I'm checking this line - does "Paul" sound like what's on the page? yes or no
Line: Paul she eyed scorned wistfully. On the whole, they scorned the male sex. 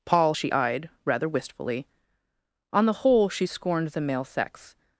yes